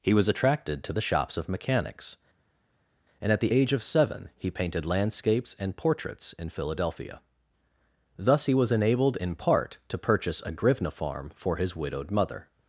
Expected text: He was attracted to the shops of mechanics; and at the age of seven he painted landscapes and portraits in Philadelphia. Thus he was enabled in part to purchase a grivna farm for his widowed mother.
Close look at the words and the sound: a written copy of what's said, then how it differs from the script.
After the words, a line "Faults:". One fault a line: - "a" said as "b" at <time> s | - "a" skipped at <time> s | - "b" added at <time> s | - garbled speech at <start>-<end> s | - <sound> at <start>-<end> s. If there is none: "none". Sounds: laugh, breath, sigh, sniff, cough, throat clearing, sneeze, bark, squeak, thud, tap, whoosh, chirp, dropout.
He was attracted to the shops of mechanics; and at the age of seven he painted landscapes and portraits in Philadelphia. Thus he was enabled in part to purchase a grivna farm for his widowed mother.
Faults:
none